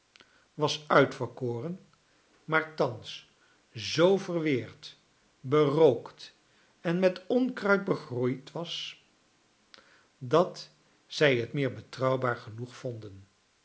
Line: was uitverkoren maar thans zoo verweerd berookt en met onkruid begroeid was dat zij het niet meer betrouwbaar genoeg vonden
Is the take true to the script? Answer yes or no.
no